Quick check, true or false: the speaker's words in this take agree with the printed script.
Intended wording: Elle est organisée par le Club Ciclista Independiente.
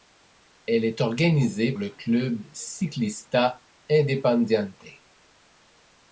false